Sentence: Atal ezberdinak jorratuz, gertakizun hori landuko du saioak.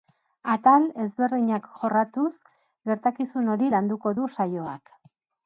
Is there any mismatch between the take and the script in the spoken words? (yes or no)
no